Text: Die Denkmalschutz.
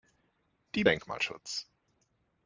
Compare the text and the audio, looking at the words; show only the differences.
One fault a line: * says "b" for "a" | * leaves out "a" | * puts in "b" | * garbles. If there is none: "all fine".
all fine